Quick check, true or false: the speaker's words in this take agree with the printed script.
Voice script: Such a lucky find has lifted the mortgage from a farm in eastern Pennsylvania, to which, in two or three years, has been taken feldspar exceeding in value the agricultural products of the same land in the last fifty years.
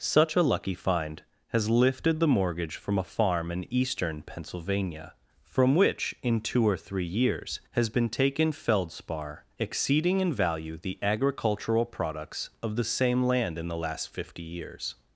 false